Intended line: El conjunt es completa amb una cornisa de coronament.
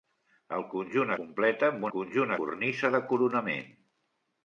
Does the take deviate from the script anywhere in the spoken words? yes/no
yes